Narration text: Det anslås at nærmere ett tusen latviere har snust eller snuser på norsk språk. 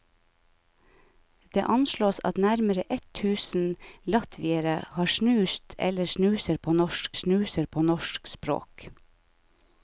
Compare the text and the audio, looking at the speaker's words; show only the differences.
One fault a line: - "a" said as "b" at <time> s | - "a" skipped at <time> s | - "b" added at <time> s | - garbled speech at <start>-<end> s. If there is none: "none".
- "snuser på norsk" added at 7.1 s